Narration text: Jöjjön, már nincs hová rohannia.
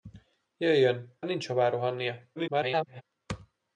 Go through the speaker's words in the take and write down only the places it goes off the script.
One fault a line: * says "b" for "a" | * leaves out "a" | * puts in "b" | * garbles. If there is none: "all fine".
* leaves out "már"
* garbles